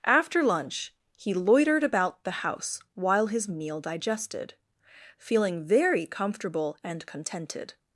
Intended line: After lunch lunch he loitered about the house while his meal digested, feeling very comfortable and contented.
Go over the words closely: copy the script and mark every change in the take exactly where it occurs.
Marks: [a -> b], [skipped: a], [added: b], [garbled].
After lunch [skipped: lunch] he loitered about the house while his meal digested, feeling very comfortable and contented.